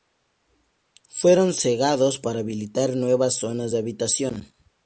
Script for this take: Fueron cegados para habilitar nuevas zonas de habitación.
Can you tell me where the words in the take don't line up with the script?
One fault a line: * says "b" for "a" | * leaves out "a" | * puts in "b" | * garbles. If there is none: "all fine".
all fine